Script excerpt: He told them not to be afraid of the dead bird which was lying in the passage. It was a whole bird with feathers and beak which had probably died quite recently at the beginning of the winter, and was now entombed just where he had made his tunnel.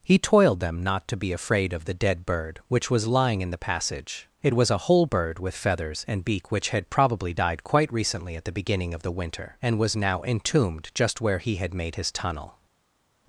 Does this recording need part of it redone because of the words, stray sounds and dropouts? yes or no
yes